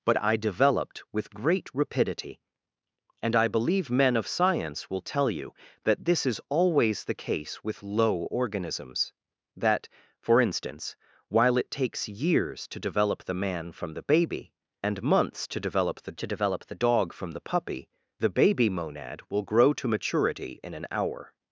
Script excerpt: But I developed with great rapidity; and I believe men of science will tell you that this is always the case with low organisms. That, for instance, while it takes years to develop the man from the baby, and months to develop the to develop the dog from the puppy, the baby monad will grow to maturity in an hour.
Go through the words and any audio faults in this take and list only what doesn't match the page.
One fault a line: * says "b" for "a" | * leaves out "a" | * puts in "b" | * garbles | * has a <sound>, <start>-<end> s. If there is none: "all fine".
all fine